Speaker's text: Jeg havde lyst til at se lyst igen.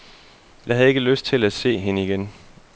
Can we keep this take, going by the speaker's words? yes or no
no